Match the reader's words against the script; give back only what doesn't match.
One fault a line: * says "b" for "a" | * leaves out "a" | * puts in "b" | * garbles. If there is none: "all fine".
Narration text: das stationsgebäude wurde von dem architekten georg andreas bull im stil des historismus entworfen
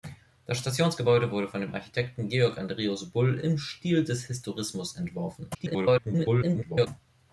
* garbles